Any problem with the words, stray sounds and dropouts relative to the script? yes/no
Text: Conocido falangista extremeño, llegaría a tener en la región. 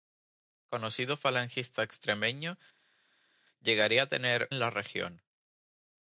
no